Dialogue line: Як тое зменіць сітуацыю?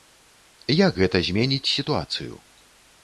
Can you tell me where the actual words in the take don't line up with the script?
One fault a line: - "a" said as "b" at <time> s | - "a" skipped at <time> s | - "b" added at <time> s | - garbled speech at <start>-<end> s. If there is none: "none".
- "тое" said as "гэта" at 1.0 s